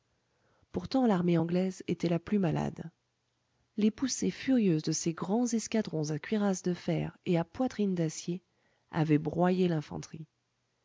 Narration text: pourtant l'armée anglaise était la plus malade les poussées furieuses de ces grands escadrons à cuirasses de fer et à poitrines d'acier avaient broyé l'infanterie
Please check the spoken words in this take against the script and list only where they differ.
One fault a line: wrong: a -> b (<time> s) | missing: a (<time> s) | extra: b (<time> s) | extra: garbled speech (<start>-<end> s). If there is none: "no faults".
no faults